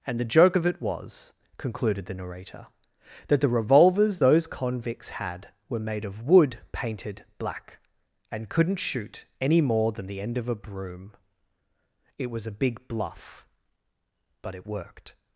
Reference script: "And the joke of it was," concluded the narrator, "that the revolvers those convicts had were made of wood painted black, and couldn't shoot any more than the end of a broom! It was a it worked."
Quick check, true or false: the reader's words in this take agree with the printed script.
false